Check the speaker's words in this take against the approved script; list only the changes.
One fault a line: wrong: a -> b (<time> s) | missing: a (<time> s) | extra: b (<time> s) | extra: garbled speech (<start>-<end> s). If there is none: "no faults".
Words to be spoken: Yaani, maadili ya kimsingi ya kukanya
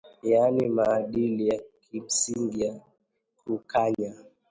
no faults